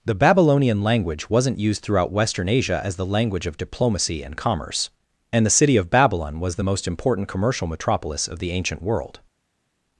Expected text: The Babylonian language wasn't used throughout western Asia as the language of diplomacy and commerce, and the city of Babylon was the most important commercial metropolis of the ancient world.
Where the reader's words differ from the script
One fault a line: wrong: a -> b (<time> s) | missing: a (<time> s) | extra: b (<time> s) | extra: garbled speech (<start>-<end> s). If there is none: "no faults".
no faults